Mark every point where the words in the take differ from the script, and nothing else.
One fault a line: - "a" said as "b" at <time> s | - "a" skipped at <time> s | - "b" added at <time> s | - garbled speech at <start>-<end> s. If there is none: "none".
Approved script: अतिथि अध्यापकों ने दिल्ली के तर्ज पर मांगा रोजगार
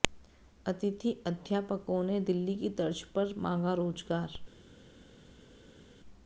- "के" said as "की" at 2.5 s